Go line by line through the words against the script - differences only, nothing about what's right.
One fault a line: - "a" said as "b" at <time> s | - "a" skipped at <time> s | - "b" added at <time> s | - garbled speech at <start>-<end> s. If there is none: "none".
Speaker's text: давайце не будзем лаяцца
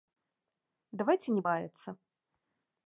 - "будзем" skipped at 1.4 s